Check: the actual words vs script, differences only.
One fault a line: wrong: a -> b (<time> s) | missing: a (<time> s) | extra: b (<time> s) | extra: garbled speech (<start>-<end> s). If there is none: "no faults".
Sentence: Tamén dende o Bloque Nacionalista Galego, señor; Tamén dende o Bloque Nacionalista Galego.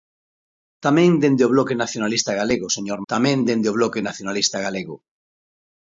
no faults